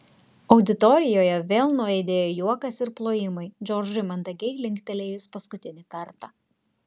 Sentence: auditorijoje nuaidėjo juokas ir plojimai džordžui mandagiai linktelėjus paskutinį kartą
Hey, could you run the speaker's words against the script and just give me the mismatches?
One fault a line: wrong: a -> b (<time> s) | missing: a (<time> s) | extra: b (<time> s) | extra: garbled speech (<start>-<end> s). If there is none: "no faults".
extra: vėl (1.5 s)